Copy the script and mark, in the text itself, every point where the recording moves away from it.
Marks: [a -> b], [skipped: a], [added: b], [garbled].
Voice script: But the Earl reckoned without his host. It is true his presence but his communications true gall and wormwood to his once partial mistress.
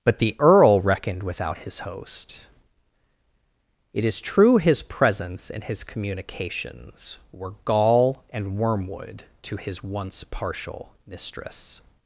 But the Earl reckoned without his host. It is true his presence [but -> and] his communications [true -> were] gall and wormwood to his once partial mistress.